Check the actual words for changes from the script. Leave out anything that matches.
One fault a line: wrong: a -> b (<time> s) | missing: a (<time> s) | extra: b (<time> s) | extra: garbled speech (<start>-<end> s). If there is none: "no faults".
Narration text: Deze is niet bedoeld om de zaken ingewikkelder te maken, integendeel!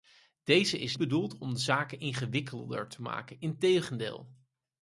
missing: niet (0.9 s)